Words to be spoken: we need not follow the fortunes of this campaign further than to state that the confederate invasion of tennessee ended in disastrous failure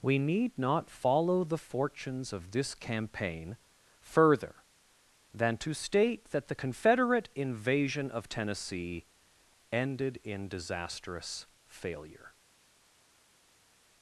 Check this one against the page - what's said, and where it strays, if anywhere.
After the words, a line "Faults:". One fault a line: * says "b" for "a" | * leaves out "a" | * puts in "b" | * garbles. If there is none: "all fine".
we need not follow the fortunes of this campaign further than to state that the confederate invasion of tennessee ended in disastrous failure
Faults:
all fine